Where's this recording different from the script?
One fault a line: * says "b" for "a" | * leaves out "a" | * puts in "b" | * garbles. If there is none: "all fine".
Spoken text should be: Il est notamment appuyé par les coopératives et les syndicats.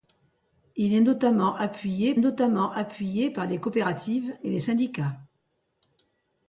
* puts in "notamment appuyé"